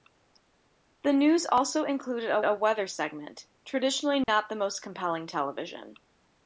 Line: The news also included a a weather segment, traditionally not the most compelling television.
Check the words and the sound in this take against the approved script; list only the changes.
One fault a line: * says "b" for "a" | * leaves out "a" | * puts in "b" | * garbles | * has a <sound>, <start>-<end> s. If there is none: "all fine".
* has a dropout, 4.2-4.3 s